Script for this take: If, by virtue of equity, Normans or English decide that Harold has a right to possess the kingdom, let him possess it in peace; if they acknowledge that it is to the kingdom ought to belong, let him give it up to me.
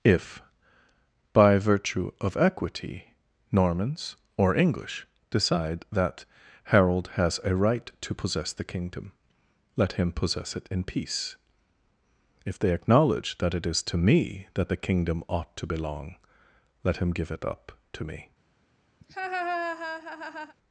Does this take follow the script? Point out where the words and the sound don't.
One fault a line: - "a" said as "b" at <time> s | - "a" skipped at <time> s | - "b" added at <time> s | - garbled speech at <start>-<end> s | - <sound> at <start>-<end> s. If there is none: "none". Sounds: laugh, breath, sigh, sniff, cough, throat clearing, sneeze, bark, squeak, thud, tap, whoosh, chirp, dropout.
- "me that" added at 14.0 s
- laugh at 19.0-20.6 s